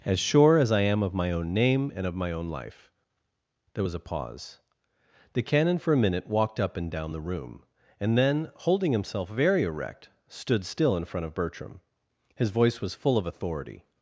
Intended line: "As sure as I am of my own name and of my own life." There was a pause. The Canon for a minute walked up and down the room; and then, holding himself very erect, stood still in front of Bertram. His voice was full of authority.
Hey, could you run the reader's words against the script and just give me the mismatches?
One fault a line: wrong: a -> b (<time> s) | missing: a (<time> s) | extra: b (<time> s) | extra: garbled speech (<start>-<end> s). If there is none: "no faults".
no faults